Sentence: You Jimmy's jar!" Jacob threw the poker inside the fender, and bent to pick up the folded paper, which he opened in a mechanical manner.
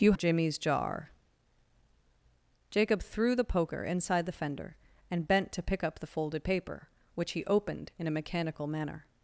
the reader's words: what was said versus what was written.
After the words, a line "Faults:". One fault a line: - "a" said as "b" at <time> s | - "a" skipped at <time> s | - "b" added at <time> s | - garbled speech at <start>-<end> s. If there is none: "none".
You Jimmy's jar!" Jacob threw the poker inside the fender, and bent to pick up the folded paper, which he opened in a mechanical manner.
Faults:
none